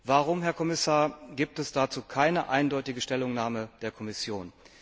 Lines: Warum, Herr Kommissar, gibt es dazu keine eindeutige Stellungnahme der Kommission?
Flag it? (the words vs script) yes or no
no